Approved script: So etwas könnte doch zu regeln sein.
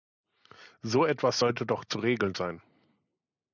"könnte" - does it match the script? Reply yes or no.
no